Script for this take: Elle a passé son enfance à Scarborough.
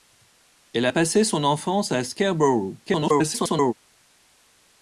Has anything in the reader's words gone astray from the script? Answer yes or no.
yes